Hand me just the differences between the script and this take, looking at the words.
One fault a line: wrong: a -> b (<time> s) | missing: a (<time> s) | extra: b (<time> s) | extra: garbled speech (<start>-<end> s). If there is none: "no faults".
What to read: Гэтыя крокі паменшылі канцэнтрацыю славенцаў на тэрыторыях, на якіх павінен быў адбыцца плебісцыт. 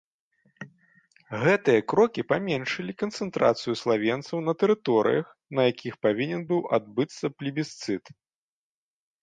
no faults